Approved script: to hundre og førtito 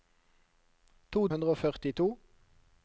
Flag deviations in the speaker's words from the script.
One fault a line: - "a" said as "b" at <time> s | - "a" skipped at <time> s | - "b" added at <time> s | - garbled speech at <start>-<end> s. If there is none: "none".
none